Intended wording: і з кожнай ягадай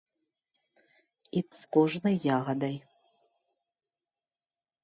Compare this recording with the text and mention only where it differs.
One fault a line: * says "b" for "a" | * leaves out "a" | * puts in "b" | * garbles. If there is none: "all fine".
all fine